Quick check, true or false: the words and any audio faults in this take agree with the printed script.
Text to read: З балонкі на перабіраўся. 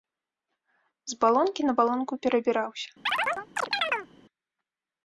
false